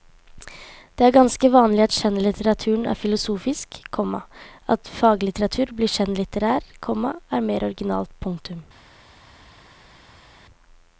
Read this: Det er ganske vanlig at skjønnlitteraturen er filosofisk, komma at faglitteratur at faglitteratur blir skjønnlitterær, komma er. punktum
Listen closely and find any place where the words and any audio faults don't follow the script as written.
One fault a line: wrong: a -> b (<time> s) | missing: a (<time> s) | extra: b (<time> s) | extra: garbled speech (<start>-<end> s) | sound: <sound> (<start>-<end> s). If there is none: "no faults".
missing: at faglitteratur (5.8 s)
extra: mer originalt (7.5 s)